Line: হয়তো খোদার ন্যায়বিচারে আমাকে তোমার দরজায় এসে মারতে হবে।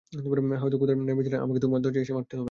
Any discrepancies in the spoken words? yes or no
no